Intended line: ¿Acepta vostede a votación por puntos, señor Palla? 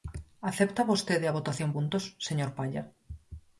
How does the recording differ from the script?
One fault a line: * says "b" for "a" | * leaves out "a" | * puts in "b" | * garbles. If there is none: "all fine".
* leaves out "por"